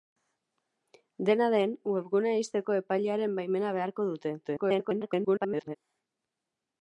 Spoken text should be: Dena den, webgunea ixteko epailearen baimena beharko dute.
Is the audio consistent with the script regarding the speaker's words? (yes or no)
no